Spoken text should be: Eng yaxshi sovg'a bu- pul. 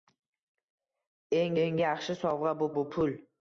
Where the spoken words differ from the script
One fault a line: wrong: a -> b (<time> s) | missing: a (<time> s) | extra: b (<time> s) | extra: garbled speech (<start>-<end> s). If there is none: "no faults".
extra: eng (1.6 s)
extra: bu (2.8 s)